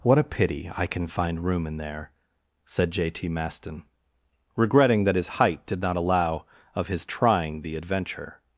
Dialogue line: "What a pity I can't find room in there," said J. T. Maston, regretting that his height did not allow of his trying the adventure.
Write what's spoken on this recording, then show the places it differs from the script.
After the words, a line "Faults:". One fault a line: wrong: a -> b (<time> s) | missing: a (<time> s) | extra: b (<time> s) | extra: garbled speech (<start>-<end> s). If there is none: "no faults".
"What a pity I can find room in there," said J. T. Maston, regretting that his height did not allow of his trying the adventure.
Faults:
wrong: can't -> can (0.9 s)